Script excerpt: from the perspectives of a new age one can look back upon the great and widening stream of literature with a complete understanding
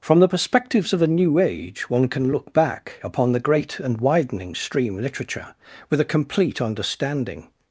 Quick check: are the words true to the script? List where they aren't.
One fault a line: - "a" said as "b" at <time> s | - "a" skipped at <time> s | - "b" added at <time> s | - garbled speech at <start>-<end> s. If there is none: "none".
- "of" skipped at 5.0 s